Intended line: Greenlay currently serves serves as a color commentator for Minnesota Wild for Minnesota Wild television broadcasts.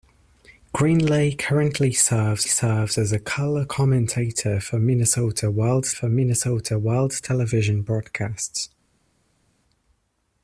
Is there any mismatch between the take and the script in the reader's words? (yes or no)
no